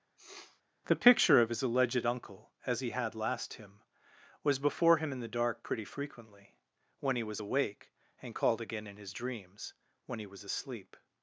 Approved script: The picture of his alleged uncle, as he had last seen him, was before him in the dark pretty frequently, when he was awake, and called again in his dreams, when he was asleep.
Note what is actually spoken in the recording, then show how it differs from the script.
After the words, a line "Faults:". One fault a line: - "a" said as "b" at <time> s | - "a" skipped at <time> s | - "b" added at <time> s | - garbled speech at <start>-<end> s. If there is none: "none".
The picture of his alleged uncle, as he had last him, was before him in the dark pretty frequently, when he was awake, and called again in his dreams, when he was asleep.
Faults:
- "seen" skipped at 3.5 s